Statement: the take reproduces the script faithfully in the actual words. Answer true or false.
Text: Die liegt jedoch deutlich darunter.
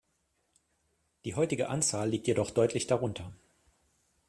false